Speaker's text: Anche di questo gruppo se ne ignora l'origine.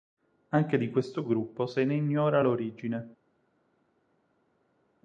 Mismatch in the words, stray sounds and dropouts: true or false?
false